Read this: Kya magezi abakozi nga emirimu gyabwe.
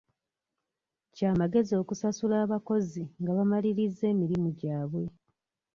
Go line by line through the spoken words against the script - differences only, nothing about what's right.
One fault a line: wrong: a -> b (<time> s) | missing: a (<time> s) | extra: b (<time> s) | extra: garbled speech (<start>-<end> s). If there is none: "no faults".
extra: okusasula (1.8 s)
extra: bamalirizza (3.4 s)